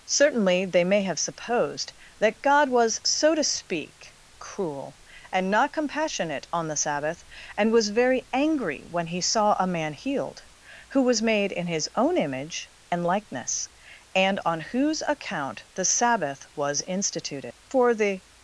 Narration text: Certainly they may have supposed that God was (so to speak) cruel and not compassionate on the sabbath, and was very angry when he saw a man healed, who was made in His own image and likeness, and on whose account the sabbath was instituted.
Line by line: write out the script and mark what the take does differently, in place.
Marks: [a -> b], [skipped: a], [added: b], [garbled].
Certainly they may have supposed that God was (so to speak) cruel and not compassionate on the sabbath, and was very angry when he saw a man healed, who was made in His own image and likeness, and on whose account the sabbath was instituted. [added: For the]